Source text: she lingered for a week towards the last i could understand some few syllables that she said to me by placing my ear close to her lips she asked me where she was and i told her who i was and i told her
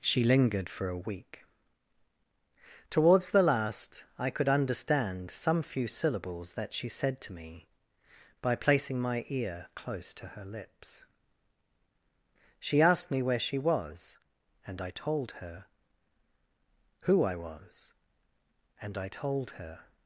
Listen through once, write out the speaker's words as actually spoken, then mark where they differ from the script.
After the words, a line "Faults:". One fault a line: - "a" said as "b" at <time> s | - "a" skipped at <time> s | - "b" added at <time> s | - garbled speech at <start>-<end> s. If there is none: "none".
she lingered for a week towards the last i could understand some few syllables that she said to me by placing my ear close to her lips she asked me where she was and i told her who i was and i told her
Faults:
none